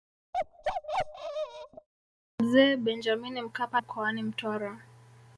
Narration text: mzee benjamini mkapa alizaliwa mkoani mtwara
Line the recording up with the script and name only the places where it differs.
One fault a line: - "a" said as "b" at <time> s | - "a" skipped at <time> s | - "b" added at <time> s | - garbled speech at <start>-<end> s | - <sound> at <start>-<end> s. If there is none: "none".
- bark at 0.3-1.9 s
- "alizaliwa" skipped at 3.8 s